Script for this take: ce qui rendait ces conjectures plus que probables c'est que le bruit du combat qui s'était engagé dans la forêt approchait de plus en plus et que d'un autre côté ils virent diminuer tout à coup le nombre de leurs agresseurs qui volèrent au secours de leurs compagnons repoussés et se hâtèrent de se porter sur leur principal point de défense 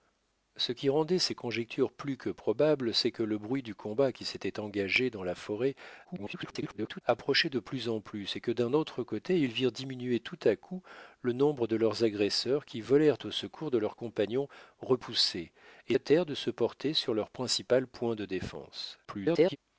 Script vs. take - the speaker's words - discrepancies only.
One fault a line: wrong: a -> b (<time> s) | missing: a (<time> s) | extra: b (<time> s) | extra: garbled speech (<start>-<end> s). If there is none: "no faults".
extra: garbled speech (6.0-7.0 s)
missing: se (16.0 s)
extra: garbled speech (19.0-19.6 s)